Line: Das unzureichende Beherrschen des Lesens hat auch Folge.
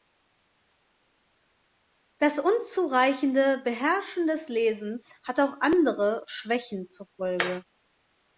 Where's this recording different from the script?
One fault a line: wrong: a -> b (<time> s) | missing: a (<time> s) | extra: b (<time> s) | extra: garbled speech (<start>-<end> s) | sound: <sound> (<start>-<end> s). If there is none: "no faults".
extra: andere Schwächen zur (5.6 s)